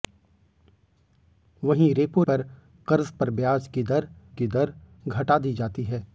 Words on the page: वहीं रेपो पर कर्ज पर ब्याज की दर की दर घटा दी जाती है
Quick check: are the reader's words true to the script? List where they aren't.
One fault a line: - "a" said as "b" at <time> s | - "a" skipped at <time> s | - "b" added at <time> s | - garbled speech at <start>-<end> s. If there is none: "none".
none